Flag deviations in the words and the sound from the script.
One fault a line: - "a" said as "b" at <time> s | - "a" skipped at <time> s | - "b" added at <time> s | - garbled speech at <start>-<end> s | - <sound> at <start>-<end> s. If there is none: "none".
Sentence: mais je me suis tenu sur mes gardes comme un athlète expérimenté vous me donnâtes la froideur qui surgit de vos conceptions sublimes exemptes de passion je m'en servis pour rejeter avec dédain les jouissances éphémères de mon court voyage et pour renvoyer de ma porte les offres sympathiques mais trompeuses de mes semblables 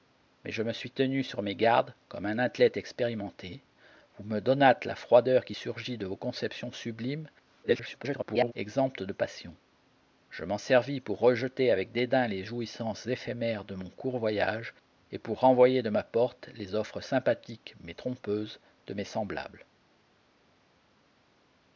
- garbled speech at 7.6-8.5 s